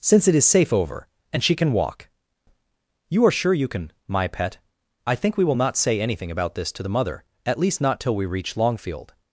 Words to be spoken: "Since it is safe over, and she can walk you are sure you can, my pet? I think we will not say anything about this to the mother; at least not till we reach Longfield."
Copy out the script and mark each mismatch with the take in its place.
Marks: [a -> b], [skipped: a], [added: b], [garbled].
"Since it is safe over, and she can walk you are sure you can, my pet? I think we will not say anything about this to the mother; at least not till we reach Longfield."